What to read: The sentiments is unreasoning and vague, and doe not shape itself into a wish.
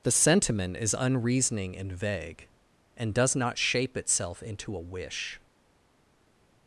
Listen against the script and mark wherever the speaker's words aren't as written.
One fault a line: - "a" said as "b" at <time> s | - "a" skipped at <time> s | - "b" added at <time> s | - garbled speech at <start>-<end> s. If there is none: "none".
- "sentiments" said as "sentiment" at 0.1 s
- "doe" said as "does" at 3.1 s